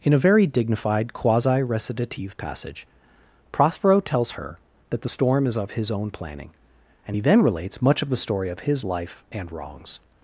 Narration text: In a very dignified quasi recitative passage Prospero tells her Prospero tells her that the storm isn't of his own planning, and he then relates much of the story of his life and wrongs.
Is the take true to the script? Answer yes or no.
no